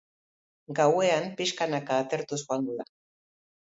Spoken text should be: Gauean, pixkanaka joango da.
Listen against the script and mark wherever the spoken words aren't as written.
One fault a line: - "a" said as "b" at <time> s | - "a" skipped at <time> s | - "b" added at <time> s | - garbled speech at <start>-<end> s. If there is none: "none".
- "atertuz" added at 2.1 s